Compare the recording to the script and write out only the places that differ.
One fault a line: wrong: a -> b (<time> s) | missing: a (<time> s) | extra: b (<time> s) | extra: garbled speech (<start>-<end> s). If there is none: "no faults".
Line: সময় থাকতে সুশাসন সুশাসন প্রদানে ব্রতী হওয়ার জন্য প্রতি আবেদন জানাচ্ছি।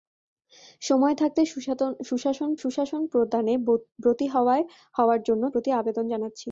no faults